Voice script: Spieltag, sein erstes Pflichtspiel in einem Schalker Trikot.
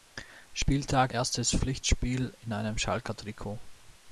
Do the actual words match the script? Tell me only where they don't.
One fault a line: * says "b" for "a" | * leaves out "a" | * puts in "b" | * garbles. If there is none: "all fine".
* leaves out "sein"